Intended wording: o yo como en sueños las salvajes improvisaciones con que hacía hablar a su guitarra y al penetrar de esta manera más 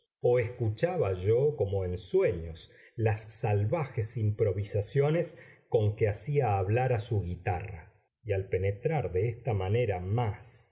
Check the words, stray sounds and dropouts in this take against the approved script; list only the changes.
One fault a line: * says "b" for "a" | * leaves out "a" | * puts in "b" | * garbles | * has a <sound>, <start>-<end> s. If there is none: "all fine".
* puts in "escuchaba"